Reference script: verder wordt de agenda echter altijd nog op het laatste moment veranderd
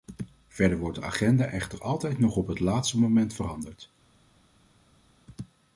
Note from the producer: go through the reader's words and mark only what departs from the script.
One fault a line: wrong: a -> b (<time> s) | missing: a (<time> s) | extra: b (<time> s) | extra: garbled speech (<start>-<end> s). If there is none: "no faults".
no faults